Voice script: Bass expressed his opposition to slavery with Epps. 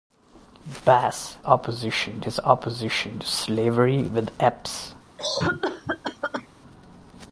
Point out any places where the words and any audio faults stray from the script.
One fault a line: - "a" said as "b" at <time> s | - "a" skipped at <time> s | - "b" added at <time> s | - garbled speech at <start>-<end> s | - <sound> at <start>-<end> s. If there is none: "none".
- "expressed" said as "opposition" at 1.4 s
- cough at 5.2-6.5 s